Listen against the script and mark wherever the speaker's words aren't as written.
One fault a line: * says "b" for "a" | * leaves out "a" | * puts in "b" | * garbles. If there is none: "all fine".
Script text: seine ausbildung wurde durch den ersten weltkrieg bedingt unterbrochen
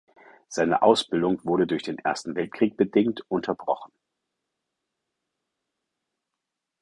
all fine